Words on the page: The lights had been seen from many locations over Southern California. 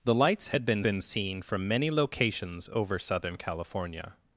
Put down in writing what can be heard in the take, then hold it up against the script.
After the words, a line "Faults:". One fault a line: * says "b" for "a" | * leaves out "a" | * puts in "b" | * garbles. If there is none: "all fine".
The lights had been been seen from many locations over Southern California.
Faults:
* puts in "been"